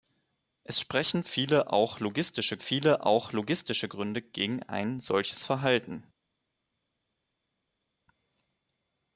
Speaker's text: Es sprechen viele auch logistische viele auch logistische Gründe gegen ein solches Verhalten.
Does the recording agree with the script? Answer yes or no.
yes